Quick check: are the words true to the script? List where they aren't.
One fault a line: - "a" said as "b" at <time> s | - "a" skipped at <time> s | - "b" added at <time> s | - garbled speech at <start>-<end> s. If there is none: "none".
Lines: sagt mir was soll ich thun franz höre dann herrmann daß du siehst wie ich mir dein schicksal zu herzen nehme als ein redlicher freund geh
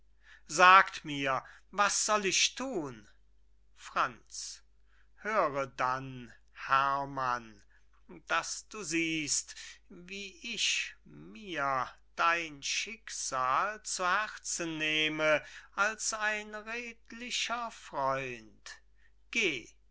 none